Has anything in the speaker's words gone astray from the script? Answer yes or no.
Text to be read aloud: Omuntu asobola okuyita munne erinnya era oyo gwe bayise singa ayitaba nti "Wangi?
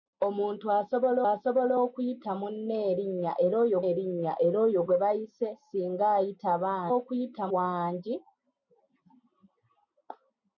yes